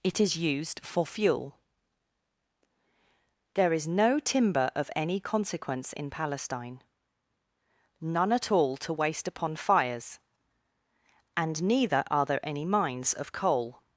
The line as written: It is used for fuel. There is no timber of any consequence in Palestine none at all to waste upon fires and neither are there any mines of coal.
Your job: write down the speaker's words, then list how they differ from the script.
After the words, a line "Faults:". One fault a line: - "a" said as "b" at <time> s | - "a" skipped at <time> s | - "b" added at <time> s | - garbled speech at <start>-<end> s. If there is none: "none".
It is used for fuel. There is no timber of any consequence in Palestine none at all to waste upon fires and neither are there any mines of coal.
Faults:
none